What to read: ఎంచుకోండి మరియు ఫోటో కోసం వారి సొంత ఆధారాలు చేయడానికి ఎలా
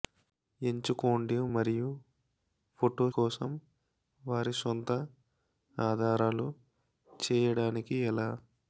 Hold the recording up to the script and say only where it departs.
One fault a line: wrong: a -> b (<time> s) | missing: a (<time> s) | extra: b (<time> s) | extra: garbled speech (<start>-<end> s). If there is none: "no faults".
no faults